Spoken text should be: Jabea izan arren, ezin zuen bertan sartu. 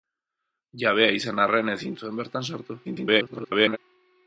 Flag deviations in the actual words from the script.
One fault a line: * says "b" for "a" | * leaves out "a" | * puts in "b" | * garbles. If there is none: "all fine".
* garbles